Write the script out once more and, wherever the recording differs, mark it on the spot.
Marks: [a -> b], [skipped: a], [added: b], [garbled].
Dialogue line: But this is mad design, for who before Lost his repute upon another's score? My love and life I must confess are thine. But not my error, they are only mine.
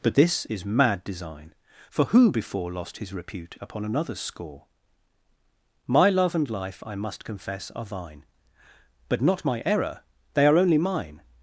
But this is mad design, for who before Lost his repute upon another's score? My love and life I must confess are thine. But not my error, they are only mine.